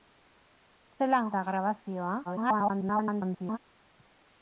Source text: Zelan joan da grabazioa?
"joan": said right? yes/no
no